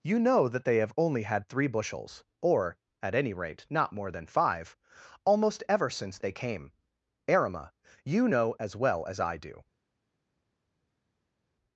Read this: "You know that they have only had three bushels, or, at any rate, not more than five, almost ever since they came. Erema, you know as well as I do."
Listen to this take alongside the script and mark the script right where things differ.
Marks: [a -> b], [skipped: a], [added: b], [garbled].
"You know that they have only had three bushels, or, at any rate, not more than five, almost ever since they came. Erema, you know as well as I do."